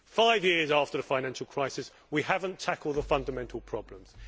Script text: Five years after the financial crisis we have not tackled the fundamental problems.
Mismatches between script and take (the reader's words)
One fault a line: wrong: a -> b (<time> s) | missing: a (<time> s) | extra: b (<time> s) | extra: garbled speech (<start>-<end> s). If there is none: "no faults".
no faults